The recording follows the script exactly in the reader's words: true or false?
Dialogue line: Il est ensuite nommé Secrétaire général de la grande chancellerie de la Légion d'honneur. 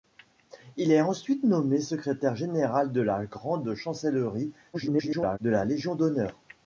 false